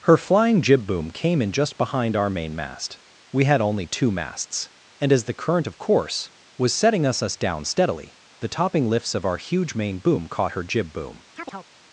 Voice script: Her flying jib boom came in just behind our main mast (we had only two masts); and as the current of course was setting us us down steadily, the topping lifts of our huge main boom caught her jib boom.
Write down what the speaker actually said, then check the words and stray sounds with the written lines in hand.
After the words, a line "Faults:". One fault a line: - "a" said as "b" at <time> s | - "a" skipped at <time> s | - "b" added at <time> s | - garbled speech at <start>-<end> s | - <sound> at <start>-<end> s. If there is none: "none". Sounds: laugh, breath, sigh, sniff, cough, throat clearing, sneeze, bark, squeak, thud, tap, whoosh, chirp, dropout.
Her flying jib boom came in just behind our main mast (we had only two masts); and as the current of course was setting us us down steadily, the topping lifts of our huge main boom caught her jib boom.
Faults:
- chirp at 11.4-11.7 s